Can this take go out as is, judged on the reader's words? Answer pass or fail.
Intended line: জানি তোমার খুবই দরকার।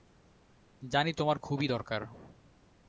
pass